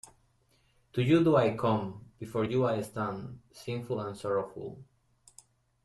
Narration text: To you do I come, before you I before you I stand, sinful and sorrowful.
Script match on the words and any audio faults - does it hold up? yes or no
no